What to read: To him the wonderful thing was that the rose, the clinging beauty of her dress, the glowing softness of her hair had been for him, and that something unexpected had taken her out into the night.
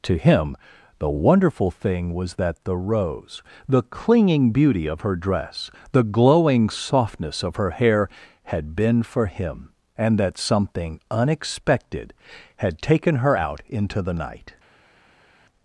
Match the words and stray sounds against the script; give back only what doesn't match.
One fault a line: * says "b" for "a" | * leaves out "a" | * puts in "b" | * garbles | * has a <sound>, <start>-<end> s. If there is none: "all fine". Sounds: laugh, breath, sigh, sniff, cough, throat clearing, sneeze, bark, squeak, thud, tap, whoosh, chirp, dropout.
all fine